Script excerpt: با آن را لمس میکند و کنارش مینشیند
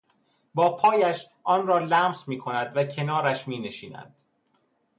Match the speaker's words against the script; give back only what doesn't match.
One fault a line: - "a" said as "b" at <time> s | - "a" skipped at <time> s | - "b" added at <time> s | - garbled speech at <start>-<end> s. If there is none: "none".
- "پایش" added at 0.8 s